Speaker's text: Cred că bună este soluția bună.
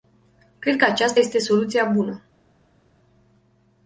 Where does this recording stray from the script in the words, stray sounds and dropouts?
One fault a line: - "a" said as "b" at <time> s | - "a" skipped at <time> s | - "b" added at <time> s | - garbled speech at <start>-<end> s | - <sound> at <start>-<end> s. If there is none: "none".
- "bună" said as "aceasta" at 0.8 s